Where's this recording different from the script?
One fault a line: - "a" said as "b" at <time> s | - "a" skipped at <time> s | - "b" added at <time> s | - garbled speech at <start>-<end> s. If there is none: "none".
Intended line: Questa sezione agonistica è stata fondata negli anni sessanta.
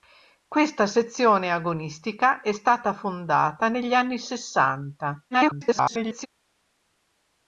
- garbled speech at 5.3-6.3 s